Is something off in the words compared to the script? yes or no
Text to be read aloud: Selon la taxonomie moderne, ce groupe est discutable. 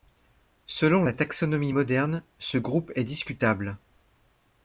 no